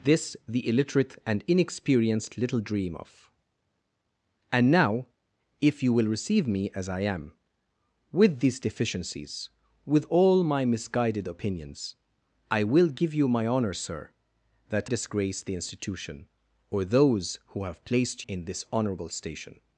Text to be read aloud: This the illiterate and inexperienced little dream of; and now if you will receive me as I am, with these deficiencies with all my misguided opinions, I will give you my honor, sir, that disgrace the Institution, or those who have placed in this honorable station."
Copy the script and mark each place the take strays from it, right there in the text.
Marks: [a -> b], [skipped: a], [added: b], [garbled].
This the illiterate and inexperienced little dream of; and now if you will receive me as I am, with these deficiencies with all my misguided opinions, I will give you my honor, sir, that disgrace the Institution, or those who have placed in this honorable station."